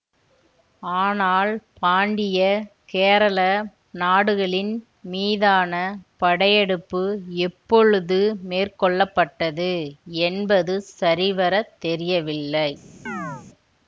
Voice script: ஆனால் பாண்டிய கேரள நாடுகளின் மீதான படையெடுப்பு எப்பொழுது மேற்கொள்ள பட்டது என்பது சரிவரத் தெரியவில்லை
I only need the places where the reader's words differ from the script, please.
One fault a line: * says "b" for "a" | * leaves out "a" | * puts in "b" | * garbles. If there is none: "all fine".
all fine